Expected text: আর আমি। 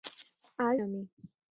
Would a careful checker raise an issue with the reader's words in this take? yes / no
no